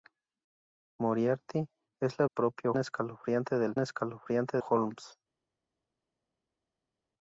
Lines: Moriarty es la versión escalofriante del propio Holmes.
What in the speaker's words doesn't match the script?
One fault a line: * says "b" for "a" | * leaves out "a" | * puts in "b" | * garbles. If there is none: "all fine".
* says "propio" for "versión"
* says "escalofriante" for "propio"